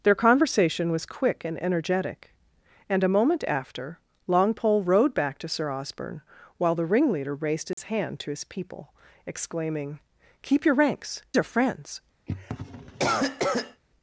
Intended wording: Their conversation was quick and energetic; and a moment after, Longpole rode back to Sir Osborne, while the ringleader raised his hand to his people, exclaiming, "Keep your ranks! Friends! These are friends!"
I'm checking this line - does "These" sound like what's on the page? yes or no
no